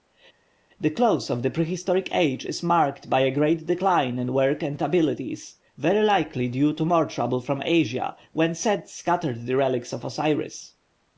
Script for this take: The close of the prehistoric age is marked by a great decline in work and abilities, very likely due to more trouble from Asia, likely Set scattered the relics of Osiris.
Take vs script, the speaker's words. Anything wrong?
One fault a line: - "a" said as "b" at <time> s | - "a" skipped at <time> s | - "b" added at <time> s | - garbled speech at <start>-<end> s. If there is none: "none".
- "likely" said as "when" at 8.3 s